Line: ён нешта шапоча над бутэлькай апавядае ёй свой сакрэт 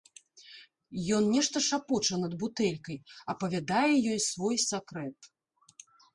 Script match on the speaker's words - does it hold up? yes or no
yes